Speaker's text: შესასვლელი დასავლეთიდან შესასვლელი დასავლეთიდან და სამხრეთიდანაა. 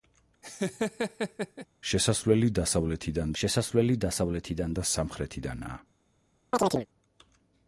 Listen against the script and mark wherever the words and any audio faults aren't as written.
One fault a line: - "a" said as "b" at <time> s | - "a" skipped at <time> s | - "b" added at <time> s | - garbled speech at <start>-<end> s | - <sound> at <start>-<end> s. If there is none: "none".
- laugh at 0.4-1.7 s
- chirp at 6.5-6.9 s